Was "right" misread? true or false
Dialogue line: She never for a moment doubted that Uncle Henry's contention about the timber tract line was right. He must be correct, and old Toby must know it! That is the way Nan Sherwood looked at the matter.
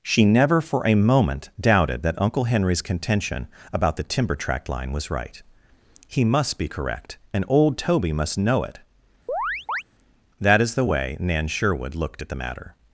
false